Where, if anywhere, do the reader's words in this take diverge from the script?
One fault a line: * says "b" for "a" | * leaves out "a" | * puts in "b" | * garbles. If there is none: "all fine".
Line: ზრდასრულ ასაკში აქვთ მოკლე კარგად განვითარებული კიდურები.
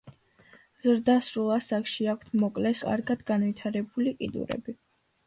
all fine